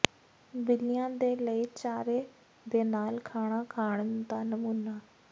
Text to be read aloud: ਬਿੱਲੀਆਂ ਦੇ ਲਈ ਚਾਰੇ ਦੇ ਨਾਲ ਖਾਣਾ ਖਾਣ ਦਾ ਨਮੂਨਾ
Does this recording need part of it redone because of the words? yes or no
no